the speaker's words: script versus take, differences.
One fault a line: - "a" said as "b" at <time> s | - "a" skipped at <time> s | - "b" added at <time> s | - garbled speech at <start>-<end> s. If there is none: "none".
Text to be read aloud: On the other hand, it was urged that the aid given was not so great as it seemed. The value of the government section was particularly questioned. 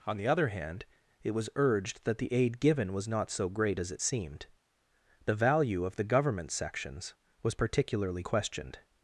- "section" said as "sections" at 6.5 s